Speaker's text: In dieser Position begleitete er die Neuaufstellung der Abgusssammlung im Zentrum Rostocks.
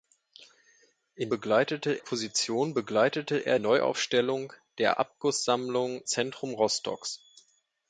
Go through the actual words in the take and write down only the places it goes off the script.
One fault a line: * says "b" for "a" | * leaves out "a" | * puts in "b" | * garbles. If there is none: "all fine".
* says "begleitete" for "dieser"
* leaves out "die"
* leaves out "im"